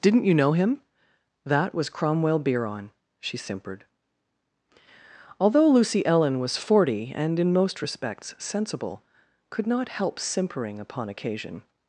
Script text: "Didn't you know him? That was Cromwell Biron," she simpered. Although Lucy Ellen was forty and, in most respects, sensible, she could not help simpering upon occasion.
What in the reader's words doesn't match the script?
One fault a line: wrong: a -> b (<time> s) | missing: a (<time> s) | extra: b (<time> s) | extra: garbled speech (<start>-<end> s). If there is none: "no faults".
missing: she (9.0 s)